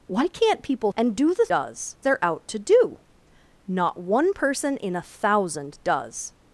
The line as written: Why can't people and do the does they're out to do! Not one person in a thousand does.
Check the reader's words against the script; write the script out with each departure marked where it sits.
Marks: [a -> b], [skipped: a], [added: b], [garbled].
Why can't people and do the does they're out to do! Not one person in a thousand does.